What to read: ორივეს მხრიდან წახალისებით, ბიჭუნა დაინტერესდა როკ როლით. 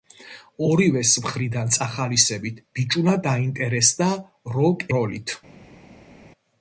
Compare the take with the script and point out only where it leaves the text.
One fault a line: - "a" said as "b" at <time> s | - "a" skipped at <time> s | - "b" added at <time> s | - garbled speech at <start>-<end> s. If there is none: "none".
none